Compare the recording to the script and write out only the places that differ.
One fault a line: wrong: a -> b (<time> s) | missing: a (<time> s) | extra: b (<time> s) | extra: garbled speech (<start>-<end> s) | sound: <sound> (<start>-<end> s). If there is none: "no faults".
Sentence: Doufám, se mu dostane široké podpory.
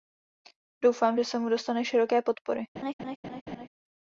extra: že (1.1 s)
sound: laugh (2.8-3.7 s)